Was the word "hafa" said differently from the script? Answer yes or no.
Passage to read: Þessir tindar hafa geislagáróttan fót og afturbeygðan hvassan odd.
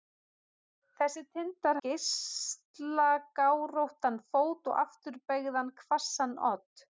yes